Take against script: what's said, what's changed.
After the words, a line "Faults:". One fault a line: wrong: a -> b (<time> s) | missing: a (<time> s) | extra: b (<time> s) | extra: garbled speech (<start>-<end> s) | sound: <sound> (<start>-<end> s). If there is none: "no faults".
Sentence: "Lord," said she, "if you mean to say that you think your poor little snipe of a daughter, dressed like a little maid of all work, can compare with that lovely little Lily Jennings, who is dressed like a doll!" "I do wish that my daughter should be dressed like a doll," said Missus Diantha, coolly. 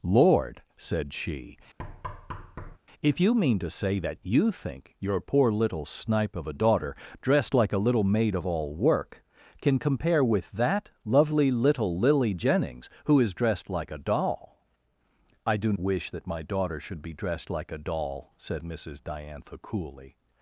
"Lord," said she, "if you mean to say that you think your poor little snipe of a daughter, dressed like a little maid of all work, can compare with that lovely little Lily Jennings, who is dressed like a doll!" "I do wish that my daughter should be dressed like a doll," said Missus Diantha, coolly.
Faults:
sound: thud (1.8-2.8 s)